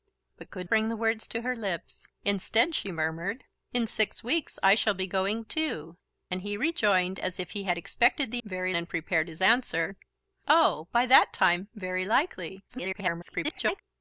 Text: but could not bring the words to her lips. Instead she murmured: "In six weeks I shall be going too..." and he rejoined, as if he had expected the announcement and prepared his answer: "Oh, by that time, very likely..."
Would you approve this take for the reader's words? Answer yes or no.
no